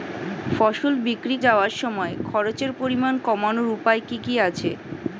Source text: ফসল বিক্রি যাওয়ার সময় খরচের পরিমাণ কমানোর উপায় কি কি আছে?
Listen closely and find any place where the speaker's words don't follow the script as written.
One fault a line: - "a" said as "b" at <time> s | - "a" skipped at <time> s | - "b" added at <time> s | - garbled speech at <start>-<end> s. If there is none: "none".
none